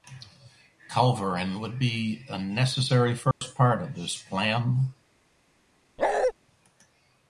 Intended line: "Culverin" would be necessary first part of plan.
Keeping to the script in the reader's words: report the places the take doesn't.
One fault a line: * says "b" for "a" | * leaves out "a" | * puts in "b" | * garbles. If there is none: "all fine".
* puts in "a"
* puts in "this"